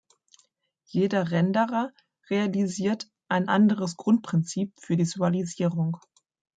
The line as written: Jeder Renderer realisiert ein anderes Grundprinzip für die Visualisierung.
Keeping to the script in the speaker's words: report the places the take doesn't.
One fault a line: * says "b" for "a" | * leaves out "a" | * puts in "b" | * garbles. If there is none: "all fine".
* leaves out "die"